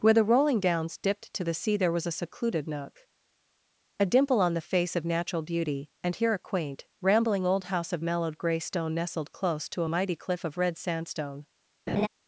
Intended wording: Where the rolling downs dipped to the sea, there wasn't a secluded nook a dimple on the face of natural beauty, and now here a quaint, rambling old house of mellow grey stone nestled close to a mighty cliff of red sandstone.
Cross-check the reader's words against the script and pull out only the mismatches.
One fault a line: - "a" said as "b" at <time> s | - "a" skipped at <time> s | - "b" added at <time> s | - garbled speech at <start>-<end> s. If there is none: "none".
- "wasn't" said as "was" at 1.9 s
- "now" skipped at 6.2 s
- "mellow" said as "mellowed" at 8.0 s